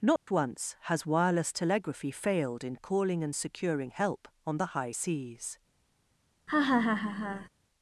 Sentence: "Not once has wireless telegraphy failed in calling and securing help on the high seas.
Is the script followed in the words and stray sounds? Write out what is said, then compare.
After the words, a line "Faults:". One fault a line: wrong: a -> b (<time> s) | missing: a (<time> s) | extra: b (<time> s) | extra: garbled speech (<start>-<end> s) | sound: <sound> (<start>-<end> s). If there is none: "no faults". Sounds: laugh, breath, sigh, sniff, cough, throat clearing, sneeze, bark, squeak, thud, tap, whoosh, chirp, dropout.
"Not once has wireless telegraphy failed in calling and securing help on the high seas.
Faults:
sound: dropout (0.2-0.3 s)
sound: laugh (6.5-7.5 s)